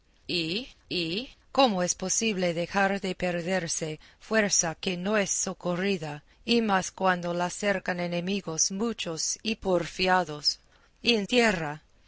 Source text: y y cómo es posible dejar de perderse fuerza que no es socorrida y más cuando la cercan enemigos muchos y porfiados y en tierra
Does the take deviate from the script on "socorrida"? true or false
false